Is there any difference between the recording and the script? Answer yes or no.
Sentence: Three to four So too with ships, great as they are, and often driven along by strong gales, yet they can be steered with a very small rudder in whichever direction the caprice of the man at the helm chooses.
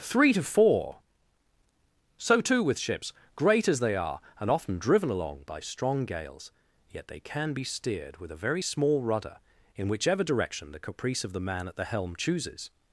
no